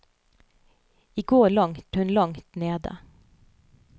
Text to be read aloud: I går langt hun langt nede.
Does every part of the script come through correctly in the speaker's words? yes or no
yes